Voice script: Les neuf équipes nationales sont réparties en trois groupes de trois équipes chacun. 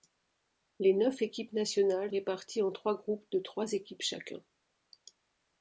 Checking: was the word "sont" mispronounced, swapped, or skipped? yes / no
yes